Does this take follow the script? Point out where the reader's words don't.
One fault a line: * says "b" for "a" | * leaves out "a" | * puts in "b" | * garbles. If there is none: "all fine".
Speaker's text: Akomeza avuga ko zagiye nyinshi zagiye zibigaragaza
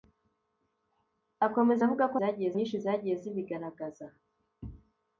all fine